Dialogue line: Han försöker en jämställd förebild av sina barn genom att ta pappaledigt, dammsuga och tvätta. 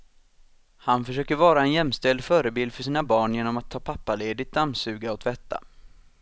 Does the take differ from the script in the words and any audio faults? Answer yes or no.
yes